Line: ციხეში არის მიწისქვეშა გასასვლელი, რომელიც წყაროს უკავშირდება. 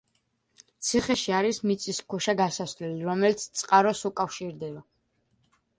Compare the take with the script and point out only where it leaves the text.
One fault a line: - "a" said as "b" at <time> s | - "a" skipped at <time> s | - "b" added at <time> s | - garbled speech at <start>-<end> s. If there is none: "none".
none